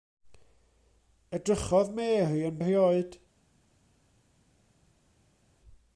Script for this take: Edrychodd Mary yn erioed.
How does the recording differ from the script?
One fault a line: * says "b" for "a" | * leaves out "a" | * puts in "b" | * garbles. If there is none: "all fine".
all fine